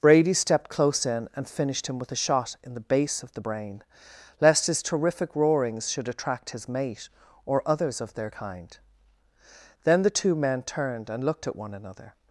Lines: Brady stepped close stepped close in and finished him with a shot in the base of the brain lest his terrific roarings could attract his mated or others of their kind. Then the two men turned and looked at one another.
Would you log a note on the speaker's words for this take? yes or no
yes